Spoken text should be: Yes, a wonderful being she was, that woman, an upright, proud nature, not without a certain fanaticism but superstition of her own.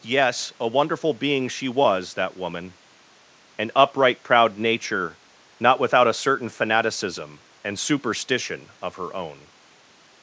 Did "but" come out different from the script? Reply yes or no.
yes